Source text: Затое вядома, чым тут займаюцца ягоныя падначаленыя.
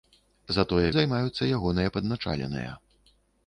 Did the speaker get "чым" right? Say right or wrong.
wrong